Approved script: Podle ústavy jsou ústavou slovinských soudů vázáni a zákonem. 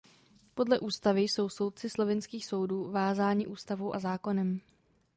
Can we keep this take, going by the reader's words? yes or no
no